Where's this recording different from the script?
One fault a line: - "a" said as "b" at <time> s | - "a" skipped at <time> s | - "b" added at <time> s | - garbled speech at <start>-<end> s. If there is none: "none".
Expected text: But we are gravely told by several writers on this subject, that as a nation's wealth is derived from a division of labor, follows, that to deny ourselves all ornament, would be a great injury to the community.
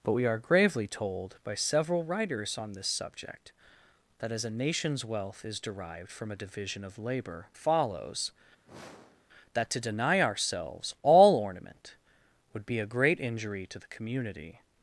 none